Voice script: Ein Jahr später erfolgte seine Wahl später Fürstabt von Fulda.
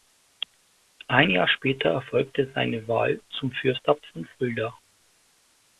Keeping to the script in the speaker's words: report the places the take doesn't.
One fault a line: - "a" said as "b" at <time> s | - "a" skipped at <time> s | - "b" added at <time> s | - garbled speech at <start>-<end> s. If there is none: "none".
- "später" said as "zum" at 3.4 s